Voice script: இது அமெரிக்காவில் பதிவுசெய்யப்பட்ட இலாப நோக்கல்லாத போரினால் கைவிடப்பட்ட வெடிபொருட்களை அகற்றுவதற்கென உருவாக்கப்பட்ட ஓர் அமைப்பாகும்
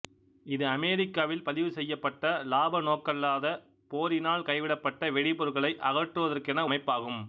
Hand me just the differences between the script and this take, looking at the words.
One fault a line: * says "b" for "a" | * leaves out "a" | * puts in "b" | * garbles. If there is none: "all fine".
* leaves out "உருவாக்கப்பட்ட ஓர்"